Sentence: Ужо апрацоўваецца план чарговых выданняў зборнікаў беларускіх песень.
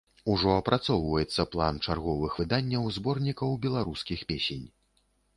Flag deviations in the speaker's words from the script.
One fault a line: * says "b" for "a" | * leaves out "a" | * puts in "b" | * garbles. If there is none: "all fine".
all fine